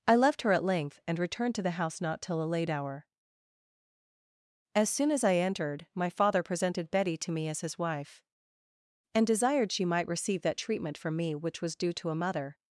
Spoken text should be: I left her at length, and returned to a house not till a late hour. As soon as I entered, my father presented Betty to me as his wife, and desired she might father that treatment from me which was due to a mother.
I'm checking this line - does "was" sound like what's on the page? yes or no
yes